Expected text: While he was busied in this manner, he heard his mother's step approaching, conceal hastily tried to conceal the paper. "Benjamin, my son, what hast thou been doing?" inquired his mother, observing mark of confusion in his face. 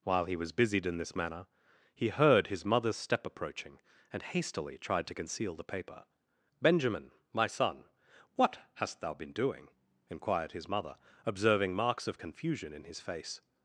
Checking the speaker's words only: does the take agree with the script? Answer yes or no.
no